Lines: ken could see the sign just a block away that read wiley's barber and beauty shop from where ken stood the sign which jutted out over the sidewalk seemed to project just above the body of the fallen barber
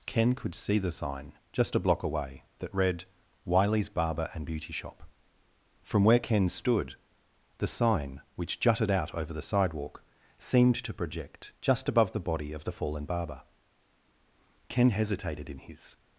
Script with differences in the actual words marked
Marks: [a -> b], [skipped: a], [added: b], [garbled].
ken could see the sign just a block away that read wiley's barber and beauty shop from where ken stood the sign which jutted out over the sidewalk seemed to project just above the body of the fallen barber [added: ken hesitated in his]